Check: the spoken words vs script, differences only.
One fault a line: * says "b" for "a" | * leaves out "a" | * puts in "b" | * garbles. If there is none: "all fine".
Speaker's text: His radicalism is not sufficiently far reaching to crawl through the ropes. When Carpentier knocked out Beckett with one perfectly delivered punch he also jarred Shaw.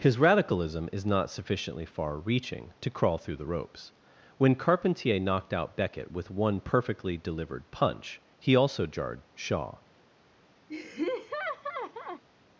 all fine